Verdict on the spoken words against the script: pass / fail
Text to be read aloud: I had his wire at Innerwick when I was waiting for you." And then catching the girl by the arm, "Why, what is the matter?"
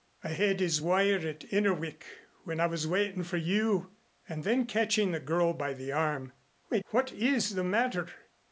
pass